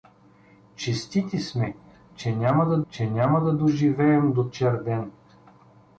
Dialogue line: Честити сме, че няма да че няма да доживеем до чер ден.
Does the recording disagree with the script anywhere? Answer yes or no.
no